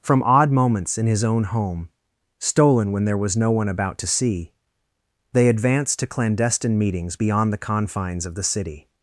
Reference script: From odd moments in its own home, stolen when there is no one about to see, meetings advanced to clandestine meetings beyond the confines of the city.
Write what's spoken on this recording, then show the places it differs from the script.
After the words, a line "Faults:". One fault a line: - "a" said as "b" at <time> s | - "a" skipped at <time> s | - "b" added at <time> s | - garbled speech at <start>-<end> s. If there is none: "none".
From odd moments in his own home, stolen when there was no one about to see, they advanced to clandestine meetings beyond the confines of the city.
Faults:
- "its" said as "his" at 1.1 s
- "is" said as "was" at 3.2 s
- "meetings" said as "they" at 5.3 s